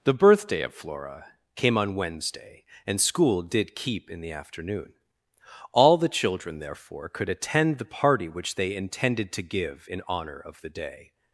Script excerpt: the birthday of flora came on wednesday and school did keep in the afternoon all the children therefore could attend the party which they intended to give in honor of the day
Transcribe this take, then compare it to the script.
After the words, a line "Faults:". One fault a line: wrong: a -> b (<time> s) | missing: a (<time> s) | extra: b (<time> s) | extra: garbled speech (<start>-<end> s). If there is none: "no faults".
the birthday of flora came on wednesday and school did keep in the afternoon all the children therefore could attend the party which they intended to give in honor of the day
Faults:
no faults